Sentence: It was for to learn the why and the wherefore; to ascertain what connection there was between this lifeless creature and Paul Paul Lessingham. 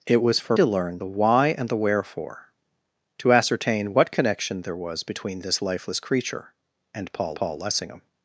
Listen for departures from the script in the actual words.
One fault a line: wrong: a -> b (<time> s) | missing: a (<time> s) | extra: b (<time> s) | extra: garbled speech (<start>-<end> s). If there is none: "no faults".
no faults